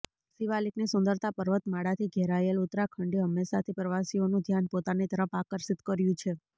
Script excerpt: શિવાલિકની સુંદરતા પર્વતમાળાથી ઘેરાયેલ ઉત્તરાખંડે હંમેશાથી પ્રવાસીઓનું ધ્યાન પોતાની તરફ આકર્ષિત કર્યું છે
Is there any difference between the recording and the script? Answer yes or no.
no